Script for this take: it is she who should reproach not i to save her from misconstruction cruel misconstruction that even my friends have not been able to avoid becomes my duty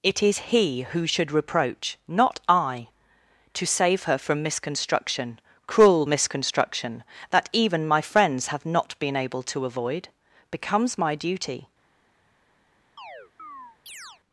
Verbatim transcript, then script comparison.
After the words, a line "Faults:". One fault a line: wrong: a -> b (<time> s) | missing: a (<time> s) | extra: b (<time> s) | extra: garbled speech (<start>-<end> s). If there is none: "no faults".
it is he who should reproach not i to save her from misconstruction cruel misconstruction that even my friends have not been able to avoid becomes my duty
Faults:
wrong: she -> he (0.4 s)